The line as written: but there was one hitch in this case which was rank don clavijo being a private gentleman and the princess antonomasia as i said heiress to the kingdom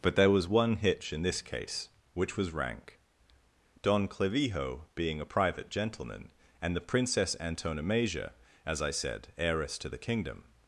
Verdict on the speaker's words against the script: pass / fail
pass